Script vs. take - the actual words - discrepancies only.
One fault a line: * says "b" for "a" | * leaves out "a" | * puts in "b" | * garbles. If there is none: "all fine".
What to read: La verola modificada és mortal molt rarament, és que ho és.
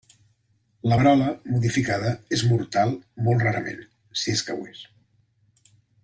* puts in "si"